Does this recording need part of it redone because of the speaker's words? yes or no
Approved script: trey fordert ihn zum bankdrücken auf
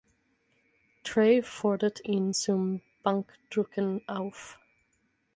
no